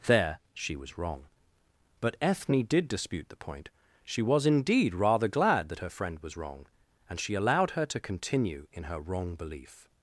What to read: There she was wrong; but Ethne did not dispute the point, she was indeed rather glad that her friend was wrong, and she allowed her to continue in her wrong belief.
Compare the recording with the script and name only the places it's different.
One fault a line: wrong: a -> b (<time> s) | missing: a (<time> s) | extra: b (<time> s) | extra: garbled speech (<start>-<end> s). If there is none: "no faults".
missing: not (2.9 s)